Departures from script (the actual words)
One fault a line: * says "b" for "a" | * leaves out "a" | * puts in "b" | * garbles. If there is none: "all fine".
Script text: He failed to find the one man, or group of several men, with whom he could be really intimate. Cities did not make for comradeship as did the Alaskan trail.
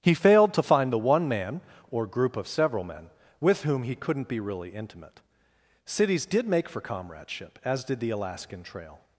* says "couldn't" for "could"
* leaves out "not"